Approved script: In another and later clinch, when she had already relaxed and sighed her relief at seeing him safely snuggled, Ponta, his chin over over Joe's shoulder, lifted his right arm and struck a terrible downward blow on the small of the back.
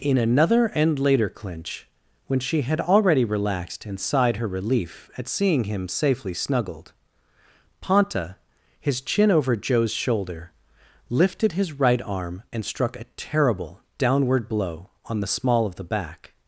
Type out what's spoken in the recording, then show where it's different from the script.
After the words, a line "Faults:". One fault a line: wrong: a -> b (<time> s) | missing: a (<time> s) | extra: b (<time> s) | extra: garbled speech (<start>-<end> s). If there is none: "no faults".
In another and later clinch, when she had already relaxed and sighed her relief at seeing him safely snuggled, Ponta, his chin over Joe's shoulder, lifted his right arm and struck a terrible downward blow on the small of the back.
Faults:
missing: over (9.6 s)